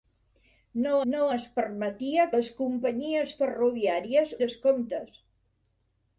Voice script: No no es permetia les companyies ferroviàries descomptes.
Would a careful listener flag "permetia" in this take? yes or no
no